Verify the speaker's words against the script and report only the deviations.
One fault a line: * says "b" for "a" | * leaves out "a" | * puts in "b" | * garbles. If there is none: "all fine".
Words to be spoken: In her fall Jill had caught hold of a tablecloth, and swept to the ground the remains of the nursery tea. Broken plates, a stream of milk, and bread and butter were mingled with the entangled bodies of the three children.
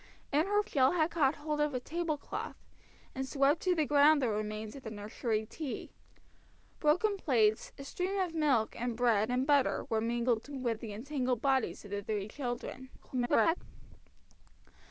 * leaves out "fall"
* garbles